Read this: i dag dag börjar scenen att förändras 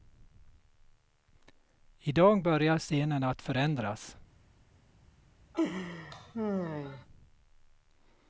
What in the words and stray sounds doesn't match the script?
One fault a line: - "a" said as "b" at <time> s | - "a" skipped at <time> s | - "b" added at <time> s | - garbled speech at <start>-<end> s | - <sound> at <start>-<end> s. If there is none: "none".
- "dag" skipped at 2.4 s
- laugh at 5.5-7.1 s